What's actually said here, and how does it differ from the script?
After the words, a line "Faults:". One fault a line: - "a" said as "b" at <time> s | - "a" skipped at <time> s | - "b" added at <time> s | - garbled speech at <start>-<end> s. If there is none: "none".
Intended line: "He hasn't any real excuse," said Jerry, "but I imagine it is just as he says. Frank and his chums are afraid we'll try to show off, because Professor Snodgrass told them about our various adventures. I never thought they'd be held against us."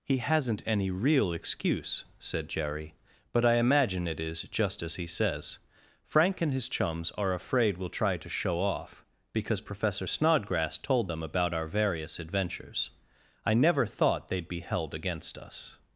"He hasn't any real excuse," said Jerry, "but I imagine it is just as he says. Frank and his chums are afraid we'll try to show off, because Professor Snodgrass told them about our various adventures. I never thought they'd be held against us."
Faults:
none